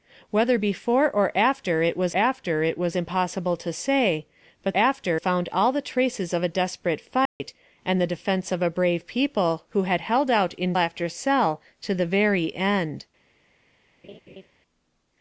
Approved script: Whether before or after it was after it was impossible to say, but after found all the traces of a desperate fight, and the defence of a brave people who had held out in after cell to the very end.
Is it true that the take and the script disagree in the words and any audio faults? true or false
true